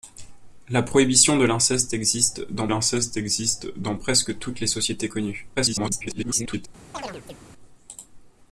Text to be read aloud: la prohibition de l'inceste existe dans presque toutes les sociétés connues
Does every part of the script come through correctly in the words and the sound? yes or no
no